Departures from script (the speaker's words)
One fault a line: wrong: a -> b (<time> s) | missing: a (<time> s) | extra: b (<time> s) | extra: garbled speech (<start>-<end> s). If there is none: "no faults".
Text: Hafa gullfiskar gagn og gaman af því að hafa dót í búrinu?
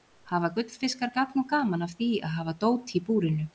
no faults